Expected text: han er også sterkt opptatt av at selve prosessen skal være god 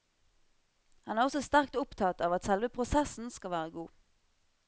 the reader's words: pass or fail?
pass